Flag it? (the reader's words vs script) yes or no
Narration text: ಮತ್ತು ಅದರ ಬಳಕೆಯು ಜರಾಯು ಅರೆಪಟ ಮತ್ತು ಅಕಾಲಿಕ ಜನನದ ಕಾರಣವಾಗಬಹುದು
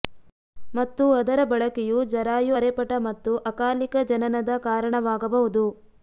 no